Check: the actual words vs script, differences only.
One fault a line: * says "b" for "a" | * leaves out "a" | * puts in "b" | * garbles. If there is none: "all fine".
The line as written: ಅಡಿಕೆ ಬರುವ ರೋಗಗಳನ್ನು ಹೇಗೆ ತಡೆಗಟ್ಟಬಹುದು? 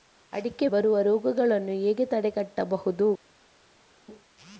all fine